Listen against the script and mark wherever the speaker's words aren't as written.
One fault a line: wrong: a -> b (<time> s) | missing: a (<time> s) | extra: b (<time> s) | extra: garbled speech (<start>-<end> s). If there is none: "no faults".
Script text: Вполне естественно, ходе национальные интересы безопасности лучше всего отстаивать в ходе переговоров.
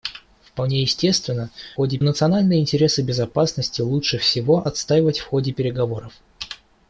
no faults